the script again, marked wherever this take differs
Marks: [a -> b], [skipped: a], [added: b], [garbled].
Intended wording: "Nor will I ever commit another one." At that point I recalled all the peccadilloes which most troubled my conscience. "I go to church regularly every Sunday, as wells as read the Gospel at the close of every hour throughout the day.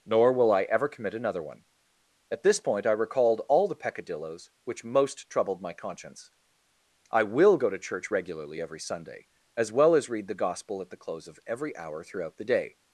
"Nor will I ever commit another one." At [that -> this] point I recalled all the peccadilloes which most troubled my conscience. "I [added: will] go to church regularly every Sunday, as [wells -> well] as read the Gospel at the close of every hour throughout the day.